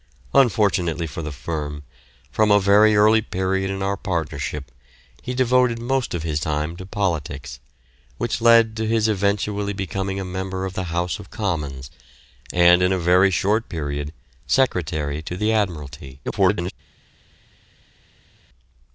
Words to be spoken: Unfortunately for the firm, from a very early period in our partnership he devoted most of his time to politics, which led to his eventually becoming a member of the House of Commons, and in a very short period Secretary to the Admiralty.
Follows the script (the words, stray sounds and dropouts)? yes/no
no